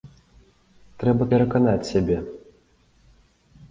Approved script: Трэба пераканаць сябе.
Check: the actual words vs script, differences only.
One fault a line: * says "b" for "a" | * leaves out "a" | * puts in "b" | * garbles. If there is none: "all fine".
all fine